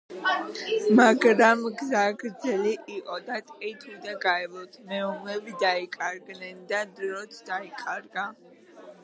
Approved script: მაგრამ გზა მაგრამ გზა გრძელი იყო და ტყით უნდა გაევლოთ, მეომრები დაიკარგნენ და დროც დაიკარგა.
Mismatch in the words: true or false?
true